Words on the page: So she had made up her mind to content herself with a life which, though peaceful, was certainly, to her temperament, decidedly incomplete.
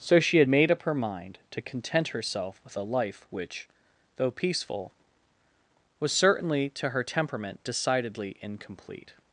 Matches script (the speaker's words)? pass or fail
pass